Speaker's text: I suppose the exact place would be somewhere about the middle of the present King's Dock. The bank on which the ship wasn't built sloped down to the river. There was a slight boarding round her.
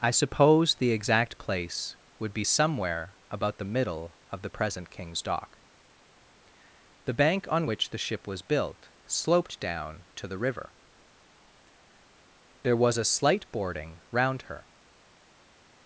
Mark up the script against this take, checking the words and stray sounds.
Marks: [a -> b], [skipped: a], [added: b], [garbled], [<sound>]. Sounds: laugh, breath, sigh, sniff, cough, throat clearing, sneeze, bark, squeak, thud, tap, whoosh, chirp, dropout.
I suppose the exact place would be somewhere about the middle of the present King's Dock. The bank on which the ship [wasn't -> was] built sloped down to the river. There was a slight boarding round her.